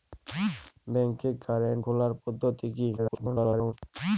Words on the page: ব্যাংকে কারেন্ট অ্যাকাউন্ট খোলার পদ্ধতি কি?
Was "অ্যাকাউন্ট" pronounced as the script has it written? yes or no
no